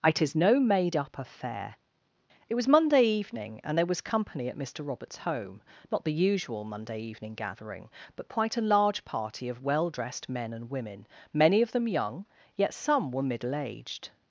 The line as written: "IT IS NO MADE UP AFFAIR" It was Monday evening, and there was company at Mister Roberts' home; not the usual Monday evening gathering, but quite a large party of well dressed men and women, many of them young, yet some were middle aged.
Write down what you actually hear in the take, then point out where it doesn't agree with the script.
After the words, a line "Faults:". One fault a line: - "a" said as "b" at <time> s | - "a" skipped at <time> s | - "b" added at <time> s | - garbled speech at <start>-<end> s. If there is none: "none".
"IT IS NO MADE UP AFFAIR" It was Monday evening, and there was company at Mister Roberts' home; not the usual Monday evening gathering, but quite a large party of well dressed men and women, many of them young, yet some were middle aged.
Faults:
none